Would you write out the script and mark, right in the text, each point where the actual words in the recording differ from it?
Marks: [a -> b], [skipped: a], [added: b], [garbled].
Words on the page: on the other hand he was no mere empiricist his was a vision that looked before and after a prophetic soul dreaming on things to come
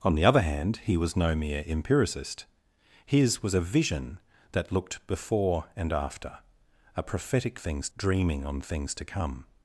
on the other hand he was no mere empiricist his was a vision that looked before and after a prophetic [soul -> things] dreaming on things to come